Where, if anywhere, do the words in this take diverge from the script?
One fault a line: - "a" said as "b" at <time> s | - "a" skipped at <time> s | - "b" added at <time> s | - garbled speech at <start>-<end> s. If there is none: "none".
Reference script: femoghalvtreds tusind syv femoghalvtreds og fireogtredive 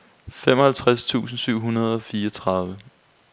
- "femoghalvtreds" said as "hundrede" at 1.6 s